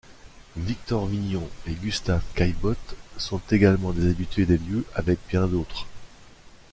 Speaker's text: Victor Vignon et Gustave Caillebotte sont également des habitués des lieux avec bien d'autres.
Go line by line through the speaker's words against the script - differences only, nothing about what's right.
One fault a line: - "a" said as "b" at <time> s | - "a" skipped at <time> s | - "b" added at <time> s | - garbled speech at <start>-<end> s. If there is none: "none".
none